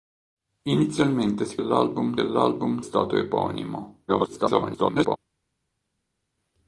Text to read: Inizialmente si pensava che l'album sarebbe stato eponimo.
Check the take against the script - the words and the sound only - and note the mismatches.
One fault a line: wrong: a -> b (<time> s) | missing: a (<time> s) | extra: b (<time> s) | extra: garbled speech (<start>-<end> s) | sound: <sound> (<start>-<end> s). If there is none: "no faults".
wrong: pensava -> l'album (1.6 s)
missing: sarebbe (2.8 s)
extra: garbled speech (4.1-5.2 s)